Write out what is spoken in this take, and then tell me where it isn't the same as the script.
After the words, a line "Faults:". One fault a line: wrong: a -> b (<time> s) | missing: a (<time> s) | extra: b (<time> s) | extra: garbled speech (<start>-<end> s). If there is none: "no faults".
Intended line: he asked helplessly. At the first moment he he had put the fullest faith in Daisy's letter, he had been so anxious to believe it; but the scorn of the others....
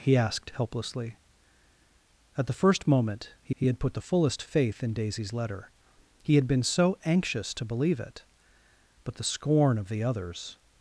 he asked helplessly. At the first moment he he had put the fullest faith in Daisy's letter, he had been so anxious to believe it; but the scorn of the others....
Faults:
no faults